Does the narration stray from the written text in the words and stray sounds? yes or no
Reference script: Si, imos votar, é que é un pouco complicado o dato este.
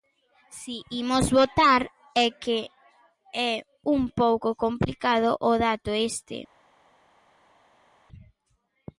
no